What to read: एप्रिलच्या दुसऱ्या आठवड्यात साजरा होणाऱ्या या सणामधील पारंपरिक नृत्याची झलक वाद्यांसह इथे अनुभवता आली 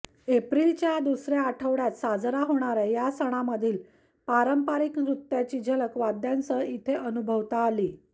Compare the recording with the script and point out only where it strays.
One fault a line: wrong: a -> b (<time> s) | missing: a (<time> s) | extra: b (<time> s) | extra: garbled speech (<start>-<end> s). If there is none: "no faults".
no faults